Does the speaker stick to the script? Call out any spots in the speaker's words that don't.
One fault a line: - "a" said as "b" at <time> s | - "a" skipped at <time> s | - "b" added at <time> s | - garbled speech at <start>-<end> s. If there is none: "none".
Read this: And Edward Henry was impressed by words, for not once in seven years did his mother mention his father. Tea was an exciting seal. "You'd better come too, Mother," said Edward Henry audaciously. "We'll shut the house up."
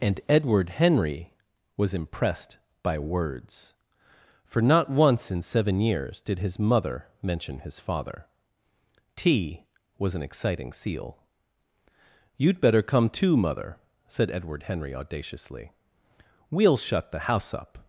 none